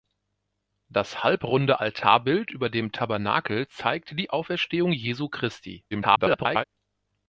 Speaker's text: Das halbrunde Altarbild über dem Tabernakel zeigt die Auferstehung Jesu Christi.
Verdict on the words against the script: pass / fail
fail